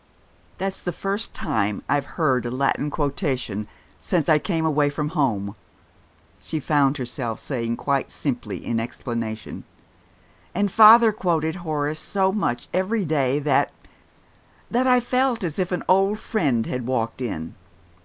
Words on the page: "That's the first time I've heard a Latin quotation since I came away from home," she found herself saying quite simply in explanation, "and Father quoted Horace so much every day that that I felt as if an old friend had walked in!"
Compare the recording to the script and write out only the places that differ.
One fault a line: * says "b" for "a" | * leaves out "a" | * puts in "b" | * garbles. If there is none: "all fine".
all fine